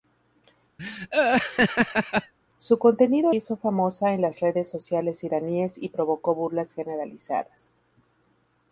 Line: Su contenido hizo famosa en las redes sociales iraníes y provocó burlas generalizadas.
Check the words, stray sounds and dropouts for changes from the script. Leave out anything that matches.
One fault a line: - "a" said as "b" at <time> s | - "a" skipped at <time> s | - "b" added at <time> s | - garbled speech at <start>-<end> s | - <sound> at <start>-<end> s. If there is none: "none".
- laugh at 0.8-2.3 s